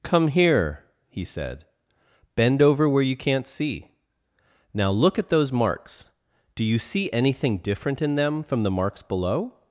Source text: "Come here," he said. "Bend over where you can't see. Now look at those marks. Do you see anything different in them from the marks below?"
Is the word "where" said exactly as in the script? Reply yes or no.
yes